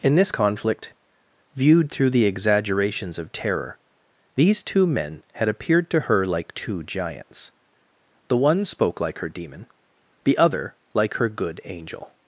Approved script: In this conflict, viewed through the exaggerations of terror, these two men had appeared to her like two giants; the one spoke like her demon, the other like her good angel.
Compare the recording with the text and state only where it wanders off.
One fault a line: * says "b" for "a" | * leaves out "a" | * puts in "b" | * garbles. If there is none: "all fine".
all fine